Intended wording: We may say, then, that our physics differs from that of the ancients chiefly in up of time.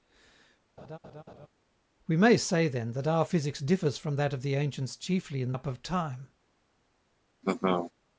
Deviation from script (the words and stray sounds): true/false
true